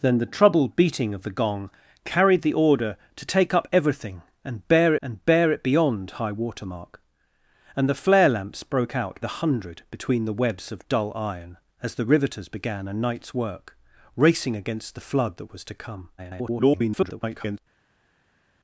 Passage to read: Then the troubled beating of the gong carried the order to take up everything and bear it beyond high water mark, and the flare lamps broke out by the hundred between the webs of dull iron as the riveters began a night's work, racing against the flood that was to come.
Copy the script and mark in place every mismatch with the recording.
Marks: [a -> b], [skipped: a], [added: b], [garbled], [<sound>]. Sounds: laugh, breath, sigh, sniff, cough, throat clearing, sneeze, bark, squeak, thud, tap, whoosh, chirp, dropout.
Then the troubled beating of the gong carried the order to take up everything and bear [added: and bear] it beyond high water mark, and the flare lamps broke out [skipped: by] the hundred between the webs of dull iron as the riveters began a night's work, racing against the flood that was to come. [garbled]